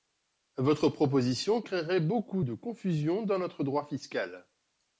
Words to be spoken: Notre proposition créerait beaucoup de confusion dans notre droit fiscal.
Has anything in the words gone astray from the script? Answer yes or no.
yes